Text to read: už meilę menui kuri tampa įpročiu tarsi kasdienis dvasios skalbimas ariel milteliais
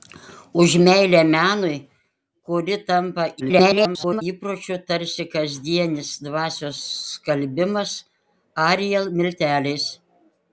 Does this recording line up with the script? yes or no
no